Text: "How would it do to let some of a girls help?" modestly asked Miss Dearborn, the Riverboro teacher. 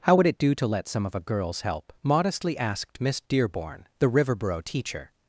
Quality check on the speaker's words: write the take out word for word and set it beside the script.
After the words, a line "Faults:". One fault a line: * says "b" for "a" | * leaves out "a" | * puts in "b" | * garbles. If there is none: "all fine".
"How would it do to let some of a girls help?" modestly asked Miss Dearborn, the Riverboro teacher.
Faults:
all fine